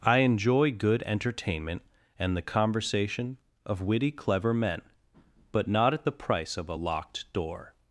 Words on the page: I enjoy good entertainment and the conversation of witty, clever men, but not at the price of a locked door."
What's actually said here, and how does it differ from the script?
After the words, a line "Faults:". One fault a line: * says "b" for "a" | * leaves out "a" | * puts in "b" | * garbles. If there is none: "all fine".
I enjoy good entertainment and the conversation of witty, clever men, but not at the price of a locked door."
Faults:
all fine